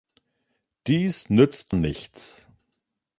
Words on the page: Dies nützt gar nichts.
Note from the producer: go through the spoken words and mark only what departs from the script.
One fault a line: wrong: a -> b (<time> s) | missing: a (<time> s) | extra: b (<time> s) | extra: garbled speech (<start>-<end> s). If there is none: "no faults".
missing: gar (1.8 s)